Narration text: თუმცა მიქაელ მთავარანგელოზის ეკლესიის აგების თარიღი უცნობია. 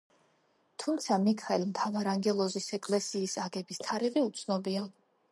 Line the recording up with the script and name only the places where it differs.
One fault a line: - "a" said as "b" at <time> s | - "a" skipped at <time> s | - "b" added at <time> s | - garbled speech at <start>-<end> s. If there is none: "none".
none